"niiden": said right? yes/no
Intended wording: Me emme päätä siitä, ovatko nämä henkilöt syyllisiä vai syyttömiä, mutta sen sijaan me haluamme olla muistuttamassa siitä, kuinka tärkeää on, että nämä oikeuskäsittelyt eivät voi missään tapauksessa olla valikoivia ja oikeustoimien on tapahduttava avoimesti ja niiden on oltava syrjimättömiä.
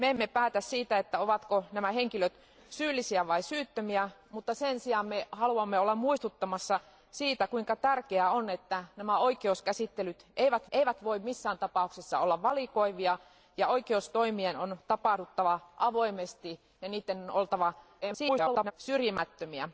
yes